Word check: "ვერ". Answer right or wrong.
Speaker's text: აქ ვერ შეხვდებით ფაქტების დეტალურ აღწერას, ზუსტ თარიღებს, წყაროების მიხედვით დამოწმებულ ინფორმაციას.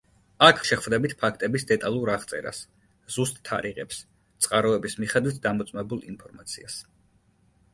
wrong